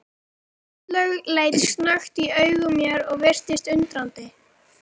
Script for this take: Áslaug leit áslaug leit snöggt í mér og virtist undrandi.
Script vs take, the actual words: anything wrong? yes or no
yes